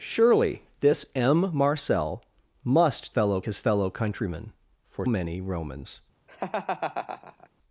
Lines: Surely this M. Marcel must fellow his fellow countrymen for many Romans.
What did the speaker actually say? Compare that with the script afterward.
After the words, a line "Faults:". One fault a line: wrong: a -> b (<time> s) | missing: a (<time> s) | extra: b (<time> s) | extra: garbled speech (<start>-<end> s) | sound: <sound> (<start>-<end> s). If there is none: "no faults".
Surely this M. Marcel must fellow his fellow countrymen for many Romans.
Faults:
sound: laugh (6.3-7.5 s)